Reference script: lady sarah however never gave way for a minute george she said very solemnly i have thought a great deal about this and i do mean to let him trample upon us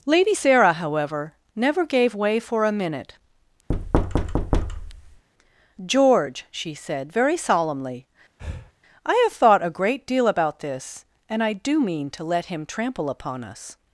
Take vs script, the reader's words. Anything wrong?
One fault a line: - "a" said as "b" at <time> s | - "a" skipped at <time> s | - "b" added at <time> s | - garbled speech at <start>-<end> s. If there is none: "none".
none